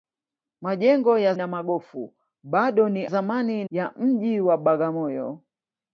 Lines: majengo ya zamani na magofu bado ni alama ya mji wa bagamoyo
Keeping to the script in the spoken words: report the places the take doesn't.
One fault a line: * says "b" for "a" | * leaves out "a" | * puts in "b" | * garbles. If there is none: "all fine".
* leaves out "zamani"
* says "zamani" for "alama"